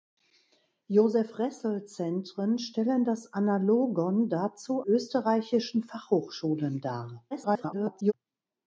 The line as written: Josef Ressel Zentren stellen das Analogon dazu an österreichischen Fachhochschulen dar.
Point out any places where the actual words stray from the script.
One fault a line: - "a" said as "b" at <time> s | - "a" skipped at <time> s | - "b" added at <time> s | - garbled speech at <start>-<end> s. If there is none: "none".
- "an" skipped at 4.8 s
- garbled speech at 7.3-8.1 s